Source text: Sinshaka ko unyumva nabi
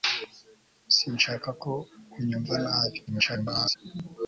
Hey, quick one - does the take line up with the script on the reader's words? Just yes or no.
no